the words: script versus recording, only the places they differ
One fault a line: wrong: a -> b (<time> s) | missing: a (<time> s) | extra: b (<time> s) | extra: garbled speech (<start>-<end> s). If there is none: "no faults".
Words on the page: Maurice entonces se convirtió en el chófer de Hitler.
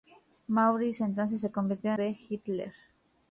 missing: en el chófer (1.9 s)